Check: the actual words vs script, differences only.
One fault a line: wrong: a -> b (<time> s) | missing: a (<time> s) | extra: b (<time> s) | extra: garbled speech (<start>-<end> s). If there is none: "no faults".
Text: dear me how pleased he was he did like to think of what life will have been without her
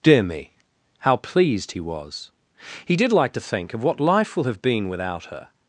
no faults